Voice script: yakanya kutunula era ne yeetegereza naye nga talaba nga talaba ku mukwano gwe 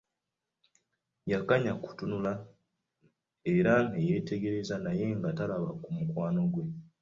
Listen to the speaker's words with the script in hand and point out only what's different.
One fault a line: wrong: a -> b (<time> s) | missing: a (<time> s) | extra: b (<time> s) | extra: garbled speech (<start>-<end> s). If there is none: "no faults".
missing: nga talaba (5.7 s)